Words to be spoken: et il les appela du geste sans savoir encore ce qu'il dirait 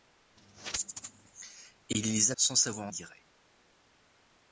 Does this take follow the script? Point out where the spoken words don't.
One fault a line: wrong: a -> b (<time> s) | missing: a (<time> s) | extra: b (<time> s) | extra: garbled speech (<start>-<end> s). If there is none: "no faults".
missing: appela du geste (2.3 s)
missing: encore ce qu'il (2.9 s)